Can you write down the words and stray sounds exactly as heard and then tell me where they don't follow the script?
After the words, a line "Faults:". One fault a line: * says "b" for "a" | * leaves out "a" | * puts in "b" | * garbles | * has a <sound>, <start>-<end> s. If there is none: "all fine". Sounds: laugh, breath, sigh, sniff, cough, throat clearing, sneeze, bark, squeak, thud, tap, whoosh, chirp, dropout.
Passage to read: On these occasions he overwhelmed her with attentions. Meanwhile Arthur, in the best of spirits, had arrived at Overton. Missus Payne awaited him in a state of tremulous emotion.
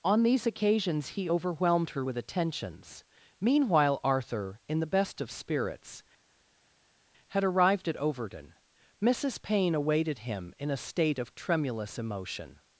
On these occasions he overwhelmed her with attentions. Meanwhile Arthur, in the best of spirits, had arrived at Overton. Missus Payne awaited him in a state of tremulous emotion.
Faults:
all fine